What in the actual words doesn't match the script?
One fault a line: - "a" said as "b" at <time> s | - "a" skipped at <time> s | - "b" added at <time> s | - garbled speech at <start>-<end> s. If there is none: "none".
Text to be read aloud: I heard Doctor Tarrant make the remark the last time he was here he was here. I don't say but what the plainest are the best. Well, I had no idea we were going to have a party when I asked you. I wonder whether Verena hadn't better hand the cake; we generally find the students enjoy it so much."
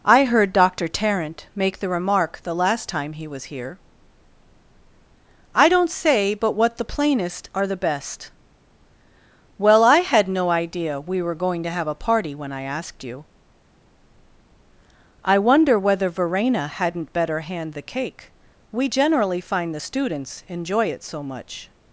- "he was here" skipped at 3.8 s